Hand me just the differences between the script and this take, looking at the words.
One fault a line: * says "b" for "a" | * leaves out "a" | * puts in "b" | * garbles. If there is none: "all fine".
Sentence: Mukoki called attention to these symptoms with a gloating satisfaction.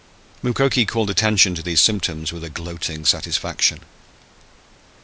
all fine